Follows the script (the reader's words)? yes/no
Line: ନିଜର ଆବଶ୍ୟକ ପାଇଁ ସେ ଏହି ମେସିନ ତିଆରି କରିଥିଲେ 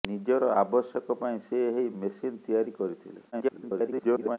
no